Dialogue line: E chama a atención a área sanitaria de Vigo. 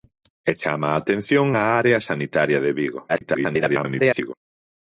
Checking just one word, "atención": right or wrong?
right